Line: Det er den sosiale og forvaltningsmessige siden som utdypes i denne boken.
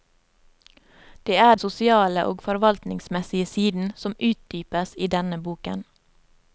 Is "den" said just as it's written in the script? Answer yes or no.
no